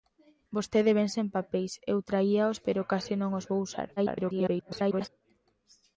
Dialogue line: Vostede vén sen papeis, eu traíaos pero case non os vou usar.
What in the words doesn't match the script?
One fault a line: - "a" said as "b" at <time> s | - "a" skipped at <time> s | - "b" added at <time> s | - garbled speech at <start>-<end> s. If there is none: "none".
- garbled speech at 4.0-5.1 s